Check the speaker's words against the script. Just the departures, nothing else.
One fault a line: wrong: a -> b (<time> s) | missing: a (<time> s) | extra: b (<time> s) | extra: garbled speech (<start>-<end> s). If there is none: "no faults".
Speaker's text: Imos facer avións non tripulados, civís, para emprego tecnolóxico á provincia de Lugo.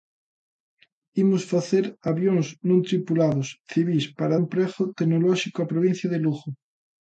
no faults